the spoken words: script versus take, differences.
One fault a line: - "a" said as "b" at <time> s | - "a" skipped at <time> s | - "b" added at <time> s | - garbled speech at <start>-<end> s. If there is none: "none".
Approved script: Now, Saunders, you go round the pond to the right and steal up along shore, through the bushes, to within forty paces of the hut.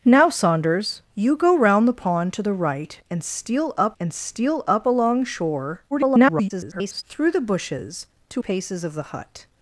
- "and steal up" added at 4.0 s
- garbled speech at 5.9-7.0 s
- "within forty" skipped at 8.4 s